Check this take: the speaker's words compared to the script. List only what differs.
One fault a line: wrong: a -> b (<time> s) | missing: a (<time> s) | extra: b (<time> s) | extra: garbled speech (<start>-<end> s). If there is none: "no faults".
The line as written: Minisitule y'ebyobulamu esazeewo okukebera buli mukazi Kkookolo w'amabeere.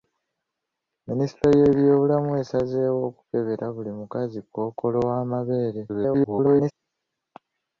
extra: garbled speech (5.9-6.7 s)